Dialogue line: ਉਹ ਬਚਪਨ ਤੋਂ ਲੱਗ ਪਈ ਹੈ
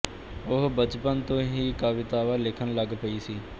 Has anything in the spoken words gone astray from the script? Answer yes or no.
yes